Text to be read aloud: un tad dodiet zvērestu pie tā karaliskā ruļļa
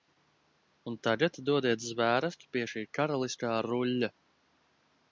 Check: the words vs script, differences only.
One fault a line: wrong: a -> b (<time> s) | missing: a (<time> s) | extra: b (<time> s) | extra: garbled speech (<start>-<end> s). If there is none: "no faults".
wrong: tad -> tagad (1.1 s)
wrong: tā -> šī (2.7 s)